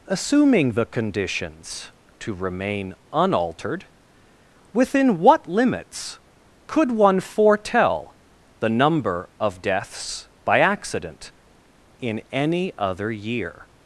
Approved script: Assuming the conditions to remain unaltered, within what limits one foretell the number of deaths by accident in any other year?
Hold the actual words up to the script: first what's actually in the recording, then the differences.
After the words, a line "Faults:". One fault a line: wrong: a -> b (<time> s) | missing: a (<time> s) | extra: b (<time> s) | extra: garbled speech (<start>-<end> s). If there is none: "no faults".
Assuming the conditions to remain unaltered, within what limits could one foretell the number of deaths by accident in any other year?
Faults:
extra: could (6.7 s)